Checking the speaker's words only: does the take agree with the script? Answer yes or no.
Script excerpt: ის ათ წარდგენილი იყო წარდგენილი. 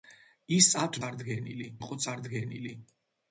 yes